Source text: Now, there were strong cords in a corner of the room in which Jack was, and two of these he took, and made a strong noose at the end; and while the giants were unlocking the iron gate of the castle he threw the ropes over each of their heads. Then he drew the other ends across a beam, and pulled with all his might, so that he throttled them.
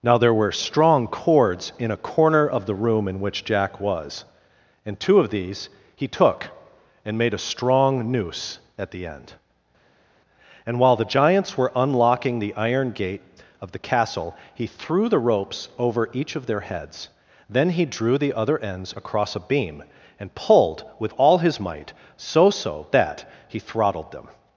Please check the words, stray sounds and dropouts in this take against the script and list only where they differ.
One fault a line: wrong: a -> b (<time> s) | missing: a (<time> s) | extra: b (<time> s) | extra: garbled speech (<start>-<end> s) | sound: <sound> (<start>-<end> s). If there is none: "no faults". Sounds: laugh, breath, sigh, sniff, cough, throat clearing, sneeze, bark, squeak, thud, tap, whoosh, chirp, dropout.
extra: so (22.5 s)